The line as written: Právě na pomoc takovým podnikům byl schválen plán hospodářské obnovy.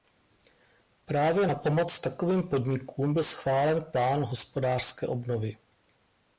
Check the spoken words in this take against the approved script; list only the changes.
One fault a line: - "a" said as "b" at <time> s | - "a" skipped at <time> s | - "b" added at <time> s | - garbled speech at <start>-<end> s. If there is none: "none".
none